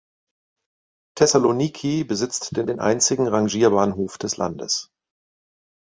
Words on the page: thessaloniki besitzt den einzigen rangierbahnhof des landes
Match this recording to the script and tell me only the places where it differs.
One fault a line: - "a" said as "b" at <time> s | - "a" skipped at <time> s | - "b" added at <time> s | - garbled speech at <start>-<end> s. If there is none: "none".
- "den" added at 2.7 s